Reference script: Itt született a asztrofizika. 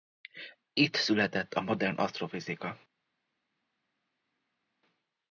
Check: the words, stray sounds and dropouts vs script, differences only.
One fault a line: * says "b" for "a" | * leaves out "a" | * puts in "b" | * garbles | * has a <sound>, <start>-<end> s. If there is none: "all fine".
* puts in "modern"